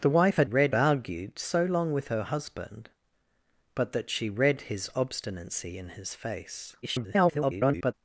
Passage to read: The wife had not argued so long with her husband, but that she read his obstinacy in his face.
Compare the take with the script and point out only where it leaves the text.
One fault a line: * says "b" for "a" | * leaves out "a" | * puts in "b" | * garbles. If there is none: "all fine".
* says "read" for "not"
* garbles